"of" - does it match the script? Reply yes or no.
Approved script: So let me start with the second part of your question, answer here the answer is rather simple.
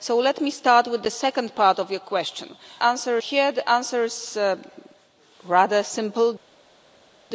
yes